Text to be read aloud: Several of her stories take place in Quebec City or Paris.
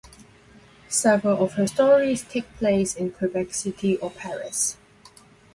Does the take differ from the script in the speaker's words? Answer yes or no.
no